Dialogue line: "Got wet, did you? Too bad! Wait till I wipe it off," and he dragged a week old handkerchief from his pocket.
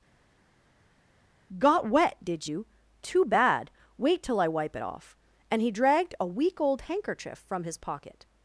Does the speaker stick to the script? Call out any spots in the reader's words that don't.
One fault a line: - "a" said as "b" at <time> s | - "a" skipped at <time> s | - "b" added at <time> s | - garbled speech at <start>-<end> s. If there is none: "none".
none